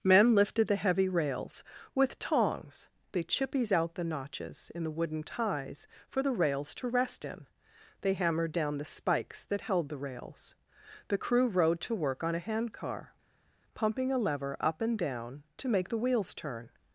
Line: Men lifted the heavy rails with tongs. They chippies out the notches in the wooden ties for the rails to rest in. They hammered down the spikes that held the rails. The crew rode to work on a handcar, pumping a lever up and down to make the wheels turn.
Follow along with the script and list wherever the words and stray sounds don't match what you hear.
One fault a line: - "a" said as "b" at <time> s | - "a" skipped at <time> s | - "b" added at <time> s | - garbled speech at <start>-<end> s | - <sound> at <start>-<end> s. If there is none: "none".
none